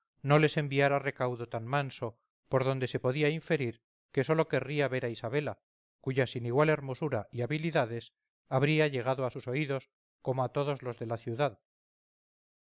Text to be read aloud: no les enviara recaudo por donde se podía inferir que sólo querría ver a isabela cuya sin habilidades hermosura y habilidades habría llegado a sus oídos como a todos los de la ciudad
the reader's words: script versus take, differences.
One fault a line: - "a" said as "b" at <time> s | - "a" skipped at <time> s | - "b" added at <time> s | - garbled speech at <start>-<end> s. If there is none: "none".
- "tan manso" added at 1.5 s
- "habilidades" said as "igual" at 6.4 s